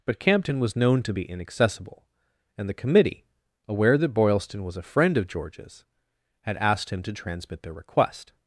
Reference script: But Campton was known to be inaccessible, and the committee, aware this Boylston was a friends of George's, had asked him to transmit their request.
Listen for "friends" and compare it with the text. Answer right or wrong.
wrong